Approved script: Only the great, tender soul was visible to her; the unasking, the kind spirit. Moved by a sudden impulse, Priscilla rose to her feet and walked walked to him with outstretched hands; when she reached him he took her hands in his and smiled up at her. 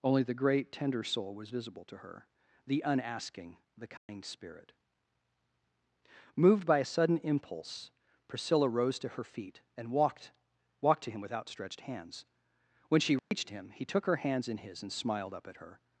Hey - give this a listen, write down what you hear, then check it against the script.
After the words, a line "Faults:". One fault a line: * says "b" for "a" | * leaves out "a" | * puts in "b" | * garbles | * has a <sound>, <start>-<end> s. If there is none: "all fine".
Only the great, tender soul was visible to her; the unasking, the kind spirit. Moved by a sudden impulse, Priscilla rose to her feet and walked walked to him with outstretched hands; when she reached him he took her hands in his and smiled up at her.
Faults:
* has a dropout, 4.0-4.1 s
* has a dropout, 13.2-13.3 s